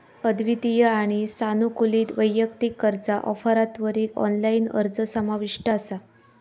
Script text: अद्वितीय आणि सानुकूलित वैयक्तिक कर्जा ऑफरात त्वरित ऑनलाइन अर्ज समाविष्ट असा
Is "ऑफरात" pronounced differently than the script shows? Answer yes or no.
no